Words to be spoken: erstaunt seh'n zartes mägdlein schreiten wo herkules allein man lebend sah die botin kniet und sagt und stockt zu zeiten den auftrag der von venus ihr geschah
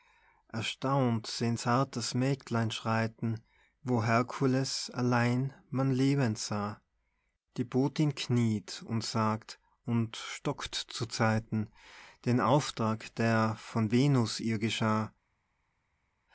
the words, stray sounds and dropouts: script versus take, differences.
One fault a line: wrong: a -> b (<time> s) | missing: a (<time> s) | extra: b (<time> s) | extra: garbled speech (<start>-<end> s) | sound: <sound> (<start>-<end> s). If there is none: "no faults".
no faults